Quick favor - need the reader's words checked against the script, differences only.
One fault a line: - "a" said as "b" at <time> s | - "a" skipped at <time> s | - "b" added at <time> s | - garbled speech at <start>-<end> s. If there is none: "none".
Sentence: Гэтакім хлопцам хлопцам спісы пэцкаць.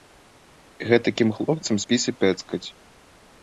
- "хлопцам" skipped at 1.8 s